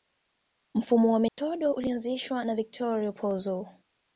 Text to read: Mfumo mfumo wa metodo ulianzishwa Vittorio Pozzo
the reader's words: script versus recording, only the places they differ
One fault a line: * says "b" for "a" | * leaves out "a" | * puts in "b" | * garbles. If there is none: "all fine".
* leaves out "mfumo"
* puts in "na"